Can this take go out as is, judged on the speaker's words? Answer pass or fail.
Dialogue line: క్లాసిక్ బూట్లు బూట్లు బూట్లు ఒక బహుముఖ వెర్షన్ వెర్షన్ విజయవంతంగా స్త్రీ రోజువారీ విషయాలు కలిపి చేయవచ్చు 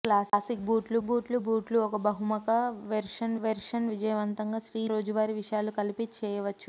pass